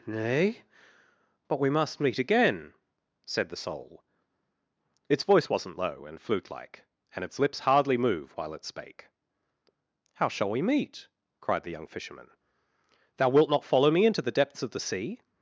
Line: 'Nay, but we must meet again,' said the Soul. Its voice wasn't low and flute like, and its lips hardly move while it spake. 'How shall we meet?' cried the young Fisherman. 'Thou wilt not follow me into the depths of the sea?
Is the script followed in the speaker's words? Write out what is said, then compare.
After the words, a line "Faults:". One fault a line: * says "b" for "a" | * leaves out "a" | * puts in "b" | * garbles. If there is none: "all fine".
'Nay, but we must meet again,' said the Soul. Its voice wasn't low and flute like, and its lips hardly move while it spake. 'How shall we meet?' cried the young Fisherman. 'Thou wilt not follow me into the depths of the sea?
Faults:
all fine